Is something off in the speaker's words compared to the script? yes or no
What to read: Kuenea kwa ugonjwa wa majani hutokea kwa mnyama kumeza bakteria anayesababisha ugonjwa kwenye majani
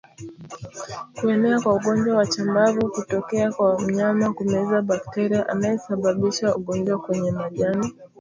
yes